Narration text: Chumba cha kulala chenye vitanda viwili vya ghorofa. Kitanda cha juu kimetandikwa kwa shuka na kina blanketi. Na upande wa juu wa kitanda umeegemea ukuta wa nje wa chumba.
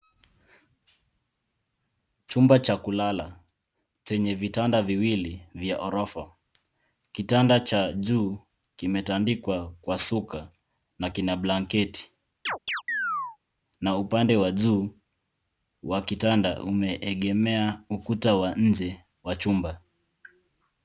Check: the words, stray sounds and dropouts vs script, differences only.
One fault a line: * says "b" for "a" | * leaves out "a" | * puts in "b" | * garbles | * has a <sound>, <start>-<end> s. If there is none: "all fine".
* has a chirp, 12.5-13.4 s